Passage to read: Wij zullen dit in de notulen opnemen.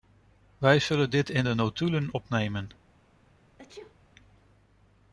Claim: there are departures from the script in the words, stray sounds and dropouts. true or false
true